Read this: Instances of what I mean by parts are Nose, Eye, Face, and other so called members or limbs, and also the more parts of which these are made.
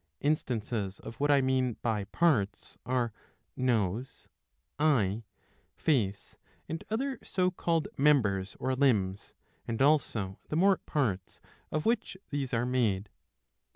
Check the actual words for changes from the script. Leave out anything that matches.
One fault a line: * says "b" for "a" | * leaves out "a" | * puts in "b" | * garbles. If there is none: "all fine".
all fine